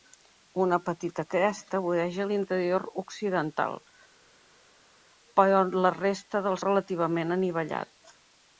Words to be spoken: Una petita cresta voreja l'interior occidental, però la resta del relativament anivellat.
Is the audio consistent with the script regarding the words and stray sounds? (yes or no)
yes